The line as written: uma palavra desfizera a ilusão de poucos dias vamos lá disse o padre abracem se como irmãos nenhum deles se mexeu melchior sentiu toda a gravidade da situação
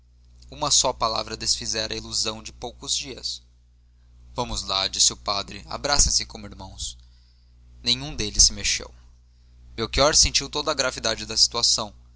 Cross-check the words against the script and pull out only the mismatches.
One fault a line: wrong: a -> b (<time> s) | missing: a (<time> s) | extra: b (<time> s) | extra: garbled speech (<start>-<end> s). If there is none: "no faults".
extra: só (0.7 s)